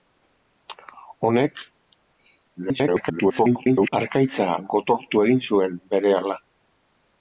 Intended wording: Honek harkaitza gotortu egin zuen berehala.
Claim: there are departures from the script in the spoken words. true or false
true